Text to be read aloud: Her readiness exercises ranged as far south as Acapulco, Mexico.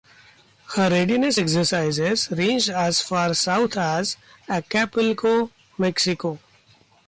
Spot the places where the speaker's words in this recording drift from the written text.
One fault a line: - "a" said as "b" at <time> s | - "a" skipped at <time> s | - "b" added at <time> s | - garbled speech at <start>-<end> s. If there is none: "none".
none